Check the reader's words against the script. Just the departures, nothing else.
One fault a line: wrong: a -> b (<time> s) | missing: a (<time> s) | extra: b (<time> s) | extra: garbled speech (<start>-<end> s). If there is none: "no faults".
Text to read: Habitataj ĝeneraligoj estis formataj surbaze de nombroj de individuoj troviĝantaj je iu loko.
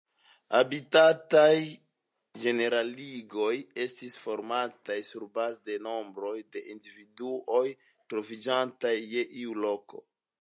no faults